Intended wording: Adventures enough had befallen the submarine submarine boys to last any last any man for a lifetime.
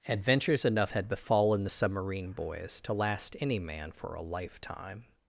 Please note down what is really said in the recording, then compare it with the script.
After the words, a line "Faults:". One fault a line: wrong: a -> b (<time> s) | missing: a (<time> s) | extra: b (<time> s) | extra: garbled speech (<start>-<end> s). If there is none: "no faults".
Adventures enough had befallen the submarine boys to last any man for a lifetime.
Faults:
missing: submarine (2.3 s)
missing: last any (3.6 s)